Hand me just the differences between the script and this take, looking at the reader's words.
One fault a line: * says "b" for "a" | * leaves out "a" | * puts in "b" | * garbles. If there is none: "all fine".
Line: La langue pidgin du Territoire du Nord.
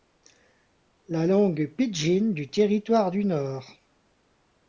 all fine